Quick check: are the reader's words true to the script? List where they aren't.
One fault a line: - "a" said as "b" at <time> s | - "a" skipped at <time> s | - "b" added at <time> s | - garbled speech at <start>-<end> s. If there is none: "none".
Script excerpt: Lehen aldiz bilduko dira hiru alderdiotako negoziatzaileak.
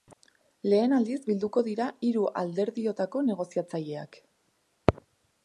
none